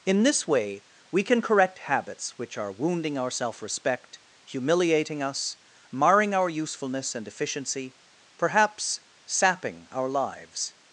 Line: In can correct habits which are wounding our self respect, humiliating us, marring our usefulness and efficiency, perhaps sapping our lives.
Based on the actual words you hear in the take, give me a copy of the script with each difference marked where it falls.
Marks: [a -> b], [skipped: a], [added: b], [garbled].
In [added: this way we] can correct habits which are wounding our self respect, humiliating us, marring our usefulness and efficiency, perhaps sapping our lives.